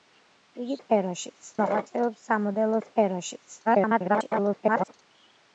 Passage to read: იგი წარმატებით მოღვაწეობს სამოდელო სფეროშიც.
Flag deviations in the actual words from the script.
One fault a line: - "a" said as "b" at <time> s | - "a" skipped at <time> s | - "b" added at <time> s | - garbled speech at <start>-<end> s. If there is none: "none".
- "წარმატებით" said as "სფეროშიც" at 0.8 s
- garbled speech at 3.6-4.9 s